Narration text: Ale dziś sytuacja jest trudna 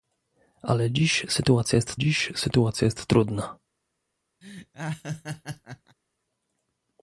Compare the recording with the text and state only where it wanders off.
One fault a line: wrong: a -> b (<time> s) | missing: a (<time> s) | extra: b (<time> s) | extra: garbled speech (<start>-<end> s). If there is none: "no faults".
extra: dziś sytuacja jest (2.0 s)